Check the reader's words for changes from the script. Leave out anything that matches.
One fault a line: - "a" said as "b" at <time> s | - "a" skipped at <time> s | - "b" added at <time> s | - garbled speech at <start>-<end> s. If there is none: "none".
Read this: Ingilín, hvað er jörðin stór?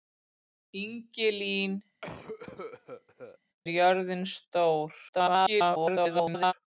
- "hvað" skipped at 1.8 s
- garbled speech at 5.1-6.5 s